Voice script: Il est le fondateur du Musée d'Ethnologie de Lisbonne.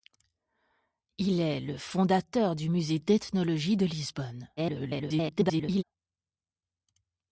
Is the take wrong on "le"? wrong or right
right